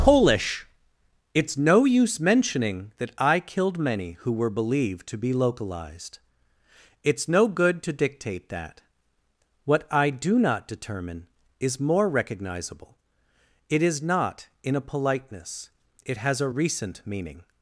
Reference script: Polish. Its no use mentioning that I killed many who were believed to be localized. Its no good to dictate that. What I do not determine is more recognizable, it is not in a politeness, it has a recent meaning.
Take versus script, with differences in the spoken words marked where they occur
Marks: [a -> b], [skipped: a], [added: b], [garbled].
Polish. Its no use mentioning that I killed many who were believed to be localized. Its no good to dictate that. What I do not determine is more recognizable, it is not in a politeness, it has a recent meaning.